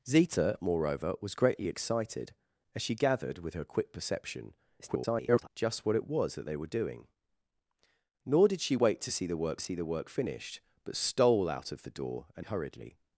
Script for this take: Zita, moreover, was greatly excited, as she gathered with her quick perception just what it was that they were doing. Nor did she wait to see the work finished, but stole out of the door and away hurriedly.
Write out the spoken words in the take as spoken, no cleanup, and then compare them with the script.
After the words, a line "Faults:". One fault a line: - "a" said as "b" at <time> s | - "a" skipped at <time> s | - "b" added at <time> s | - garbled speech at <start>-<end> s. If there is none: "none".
Zita, moreover, was greatly excited, as she gathered with her quick perception [garbled] just what it was that they were doing. Nor did she wait to see the work see the work finished, but stole out of the door and hurriedly.
Faults:
- garbled speech at 4.8-5.5 s
- "see the work" added at 9.6 s
- "away" skipped at 12.4 s